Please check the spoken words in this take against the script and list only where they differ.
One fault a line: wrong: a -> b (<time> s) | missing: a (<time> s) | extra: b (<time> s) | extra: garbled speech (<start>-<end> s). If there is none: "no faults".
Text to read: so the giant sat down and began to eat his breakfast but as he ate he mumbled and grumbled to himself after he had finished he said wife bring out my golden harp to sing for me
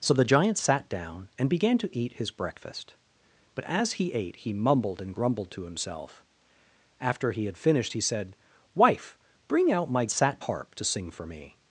wrong: golden -> sat (10.1 s)